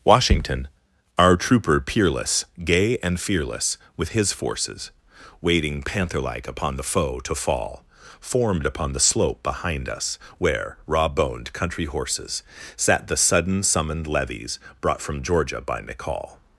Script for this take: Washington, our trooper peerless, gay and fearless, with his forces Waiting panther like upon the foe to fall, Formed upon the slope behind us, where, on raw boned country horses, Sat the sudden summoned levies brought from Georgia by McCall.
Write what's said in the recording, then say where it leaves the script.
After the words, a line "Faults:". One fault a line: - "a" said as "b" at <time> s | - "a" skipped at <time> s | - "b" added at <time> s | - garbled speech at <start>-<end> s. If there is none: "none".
Washington, our trooper peerless, gay and fearless, with his forces Waiting panther like upon the foe to fall, Formed upon the slope behind us, where, raw boned country horses, Sat the sudden summoned levies brought from Georgia by McCall.
Faults:
- "on" skipped at 10.8 s